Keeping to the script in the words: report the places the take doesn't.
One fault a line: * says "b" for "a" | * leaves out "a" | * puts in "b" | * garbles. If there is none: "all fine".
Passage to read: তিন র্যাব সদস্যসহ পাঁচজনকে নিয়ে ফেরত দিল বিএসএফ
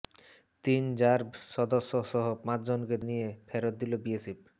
all fine